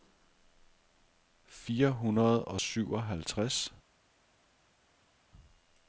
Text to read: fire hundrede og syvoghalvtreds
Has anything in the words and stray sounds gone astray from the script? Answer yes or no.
no